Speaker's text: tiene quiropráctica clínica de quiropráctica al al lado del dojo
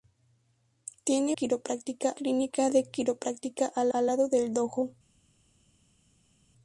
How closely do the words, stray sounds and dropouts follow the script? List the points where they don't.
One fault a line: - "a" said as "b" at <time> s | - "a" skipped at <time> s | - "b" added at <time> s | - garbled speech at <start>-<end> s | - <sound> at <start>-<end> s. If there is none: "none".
none